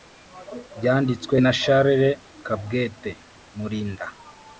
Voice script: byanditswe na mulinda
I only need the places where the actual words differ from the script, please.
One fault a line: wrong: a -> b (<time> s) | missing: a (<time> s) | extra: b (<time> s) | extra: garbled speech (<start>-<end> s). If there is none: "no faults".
extra: charles kabwete (1.6 s)